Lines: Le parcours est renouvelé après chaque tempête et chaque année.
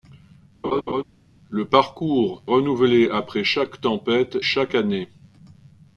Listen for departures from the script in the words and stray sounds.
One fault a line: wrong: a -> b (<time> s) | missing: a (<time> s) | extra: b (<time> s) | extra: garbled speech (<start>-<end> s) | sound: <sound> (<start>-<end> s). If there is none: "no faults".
sound: laugh (0.6-1.0 s)
missing: est (2.4 s)
missing: et (4.4 s)